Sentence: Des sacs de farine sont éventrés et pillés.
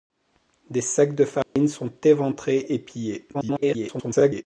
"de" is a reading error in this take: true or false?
false